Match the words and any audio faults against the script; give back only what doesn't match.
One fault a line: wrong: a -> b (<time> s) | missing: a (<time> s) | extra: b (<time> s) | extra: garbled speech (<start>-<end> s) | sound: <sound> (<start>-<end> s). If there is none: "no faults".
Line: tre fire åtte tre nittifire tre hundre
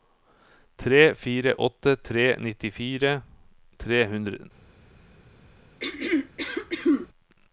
sound: throat clearing (5.8-7.1 s)